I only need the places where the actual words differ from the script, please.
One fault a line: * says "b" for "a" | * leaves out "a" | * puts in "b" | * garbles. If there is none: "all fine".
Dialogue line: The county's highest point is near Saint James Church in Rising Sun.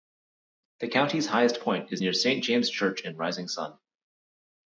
all fine